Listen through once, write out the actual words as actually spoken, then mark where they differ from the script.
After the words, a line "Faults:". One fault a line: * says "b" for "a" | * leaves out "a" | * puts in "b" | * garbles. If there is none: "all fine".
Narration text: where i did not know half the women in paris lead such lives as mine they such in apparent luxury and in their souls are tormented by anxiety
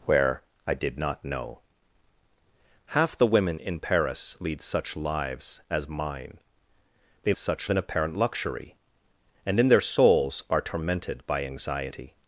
where i did not know half the women in paris lead such lives as mine they such in apparent luxury and in their souls are tormented by anxiety
Faults:
all fine